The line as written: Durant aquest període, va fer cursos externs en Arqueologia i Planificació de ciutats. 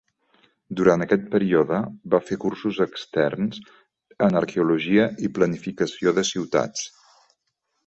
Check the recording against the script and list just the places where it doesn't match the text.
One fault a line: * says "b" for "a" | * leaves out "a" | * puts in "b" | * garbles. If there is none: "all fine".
all fine